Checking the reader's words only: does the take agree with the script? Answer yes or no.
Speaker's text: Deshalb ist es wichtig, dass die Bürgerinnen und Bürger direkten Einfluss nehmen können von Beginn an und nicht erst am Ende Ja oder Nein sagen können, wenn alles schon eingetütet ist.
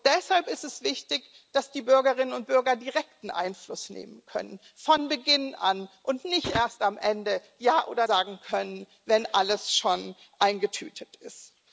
no